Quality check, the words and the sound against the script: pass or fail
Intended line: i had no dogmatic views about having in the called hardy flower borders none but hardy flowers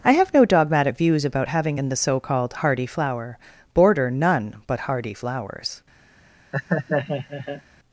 fail